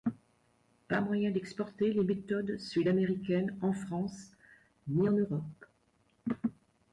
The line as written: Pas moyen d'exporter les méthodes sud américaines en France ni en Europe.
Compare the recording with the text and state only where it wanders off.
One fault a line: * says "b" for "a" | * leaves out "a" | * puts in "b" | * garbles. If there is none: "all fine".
all fine